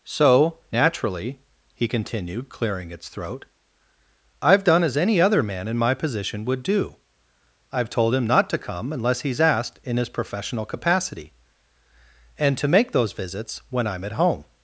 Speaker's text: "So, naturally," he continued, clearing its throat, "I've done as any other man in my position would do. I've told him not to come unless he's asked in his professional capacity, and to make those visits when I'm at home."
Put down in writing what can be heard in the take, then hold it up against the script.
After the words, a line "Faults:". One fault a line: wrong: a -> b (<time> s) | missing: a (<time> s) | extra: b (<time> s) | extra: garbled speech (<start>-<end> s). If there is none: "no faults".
"So, naturally," he continued, clearing its throat, "I've done as any other man in my position would do. I've told him not to come unless he's asked in his professional capacity, and to make those visits when I'm at home."
Faults:
no faults